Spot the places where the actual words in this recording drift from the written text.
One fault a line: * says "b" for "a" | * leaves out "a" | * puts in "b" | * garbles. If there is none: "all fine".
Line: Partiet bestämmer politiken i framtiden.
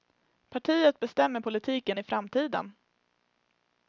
all fine